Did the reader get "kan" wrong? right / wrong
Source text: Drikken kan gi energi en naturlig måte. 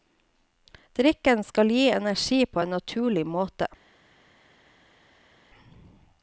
wrong